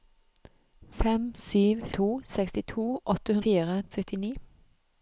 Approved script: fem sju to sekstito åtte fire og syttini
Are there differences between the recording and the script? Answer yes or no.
no